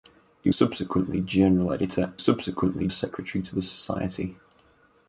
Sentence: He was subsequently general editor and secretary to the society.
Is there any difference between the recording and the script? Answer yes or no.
yes